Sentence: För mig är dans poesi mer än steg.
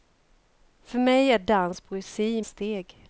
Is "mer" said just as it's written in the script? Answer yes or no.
no